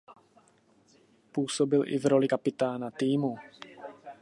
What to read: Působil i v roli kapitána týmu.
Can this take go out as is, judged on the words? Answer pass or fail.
pass